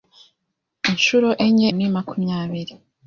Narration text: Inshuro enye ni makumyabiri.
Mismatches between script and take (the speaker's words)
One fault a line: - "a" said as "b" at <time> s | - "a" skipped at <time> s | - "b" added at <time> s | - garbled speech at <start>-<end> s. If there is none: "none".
none